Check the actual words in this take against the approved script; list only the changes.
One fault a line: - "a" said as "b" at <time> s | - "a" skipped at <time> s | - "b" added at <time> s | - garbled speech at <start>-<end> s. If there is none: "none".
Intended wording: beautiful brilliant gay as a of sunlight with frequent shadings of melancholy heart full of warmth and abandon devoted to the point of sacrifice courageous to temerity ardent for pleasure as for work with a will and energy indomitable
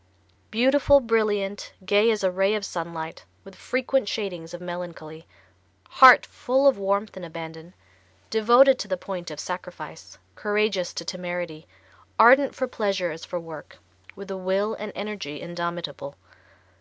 - "ray" added at 2.3 s